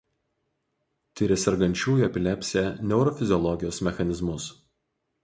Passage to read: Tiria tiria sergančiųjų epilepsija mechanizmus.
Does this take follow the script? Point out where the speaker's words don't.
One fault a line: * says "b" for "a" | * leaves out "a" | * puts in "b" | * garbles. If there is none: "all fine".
* leaves out "tiria"
* puts in "neurofiziologijos"